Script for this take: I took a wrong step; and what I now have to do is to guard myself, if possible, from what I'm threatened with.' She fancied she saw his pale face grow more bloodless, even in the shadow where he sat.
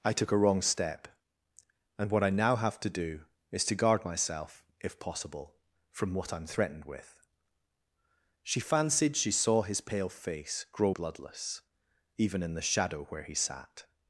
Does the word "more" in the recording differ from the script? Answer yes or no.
yes